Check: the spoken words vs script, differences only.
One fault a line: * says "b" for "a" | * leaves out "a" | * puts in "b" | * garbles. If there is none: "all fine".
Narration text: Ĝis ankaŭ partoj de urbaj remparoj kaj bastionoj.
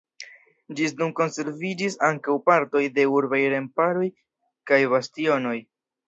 * puts in "nun konserviĝis"